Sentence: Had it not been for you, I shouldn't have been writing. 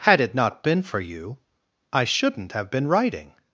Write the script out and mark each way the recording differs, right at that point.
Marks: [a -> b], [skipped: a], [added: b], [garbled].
Had it not been for you, I shouldn't have been writing.